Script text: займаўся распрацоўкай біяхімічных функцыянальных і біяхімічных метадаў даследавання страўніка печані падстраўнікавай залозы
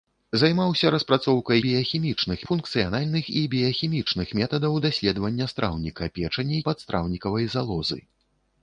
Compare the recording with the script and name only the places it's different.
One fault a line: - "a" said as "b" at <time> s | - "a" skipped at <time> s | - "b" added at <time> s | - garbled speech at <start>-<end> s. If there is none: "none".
none